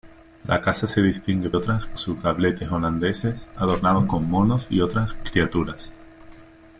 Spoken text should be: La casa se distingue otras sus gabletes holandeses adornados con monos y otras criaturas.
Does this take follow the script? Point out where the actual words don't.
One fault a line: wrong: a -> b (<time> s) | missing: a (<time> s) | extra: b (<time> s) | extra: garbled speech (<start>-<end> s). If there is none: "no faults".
no faults